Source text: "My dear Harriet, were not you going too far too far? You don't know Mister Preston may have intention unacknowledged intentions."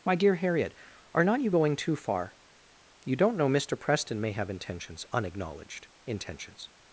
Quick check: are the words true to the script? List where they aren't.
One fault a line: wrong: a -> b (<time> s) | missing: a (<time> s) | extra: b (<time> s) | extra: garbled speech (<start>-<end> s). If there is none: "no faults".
wrong: were -> are (1.1 s)
missing: too far (2.4 s)
wrong: intention -> intentions (4.5 s)